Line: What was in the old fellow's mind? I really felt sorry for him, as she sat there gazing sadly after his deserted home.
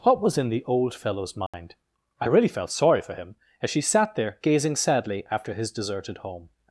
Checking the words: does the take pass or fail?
pass